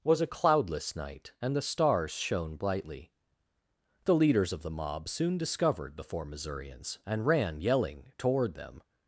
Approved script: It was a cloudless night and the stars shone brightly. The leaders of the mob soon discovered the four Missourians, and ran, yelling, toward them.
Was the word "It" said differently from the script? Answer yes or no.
yes